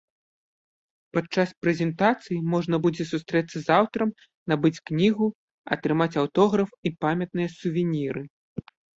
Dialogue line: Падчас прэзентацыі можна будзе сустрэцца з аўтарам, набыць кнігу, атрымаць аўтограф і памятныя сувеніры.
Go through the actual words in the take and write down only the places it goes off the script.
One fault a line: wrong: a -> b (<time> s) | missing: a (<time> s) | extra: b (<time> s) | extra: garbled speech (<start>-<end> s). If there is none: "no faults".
no faults